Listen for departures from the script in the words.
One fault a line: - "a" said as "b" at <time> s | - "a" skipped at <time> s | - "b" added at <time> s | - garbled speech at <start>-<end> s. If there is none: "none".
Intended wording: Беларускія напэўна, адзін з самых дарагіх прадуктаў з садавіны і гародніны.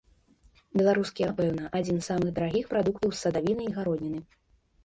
none